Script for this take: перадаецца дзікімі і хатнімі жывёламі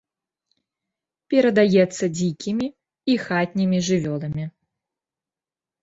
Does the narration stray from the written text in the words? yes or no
no